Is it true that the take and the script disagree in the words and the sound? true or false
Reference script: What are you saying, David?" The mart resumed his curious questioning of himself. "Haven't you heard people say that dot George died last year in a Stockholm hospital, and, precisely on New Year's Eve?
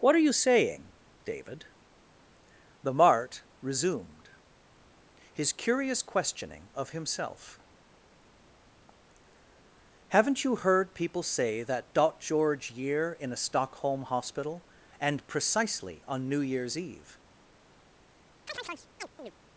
true